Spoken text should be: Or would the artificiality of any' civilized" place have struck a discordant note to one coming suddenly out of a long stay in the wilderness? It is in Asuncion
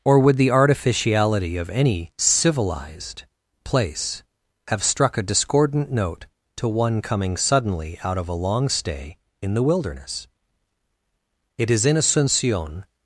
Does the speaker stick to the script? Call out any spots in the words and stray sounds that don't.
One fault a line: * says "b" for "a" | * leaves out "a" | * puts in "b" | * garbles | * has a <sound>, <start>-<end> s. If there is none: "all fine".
all fine